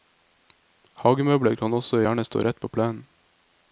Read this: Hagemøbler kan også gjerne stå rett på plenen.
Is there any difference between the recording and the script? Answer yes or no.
no